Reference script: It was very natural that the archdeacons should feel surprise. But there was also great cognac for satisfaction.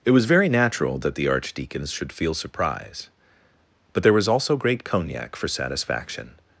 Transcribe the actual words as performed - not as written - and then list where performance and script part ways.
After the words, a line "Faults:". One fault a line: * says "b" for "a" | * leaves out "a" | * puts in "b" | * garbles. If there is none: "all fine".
It was very natural that the archdeacons should feel surprise. But there was also great cognac for satisfaction.
Faults:
all fine